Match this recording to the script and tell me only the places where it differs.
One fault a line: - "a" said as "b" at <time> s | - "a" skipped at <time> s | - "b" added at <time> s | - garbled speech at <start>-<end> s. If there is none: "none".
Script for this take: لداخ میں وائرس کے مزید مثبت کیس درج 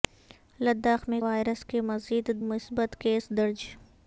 none